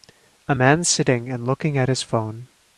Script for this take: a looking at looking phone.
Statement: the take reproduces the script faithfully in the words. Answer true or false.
false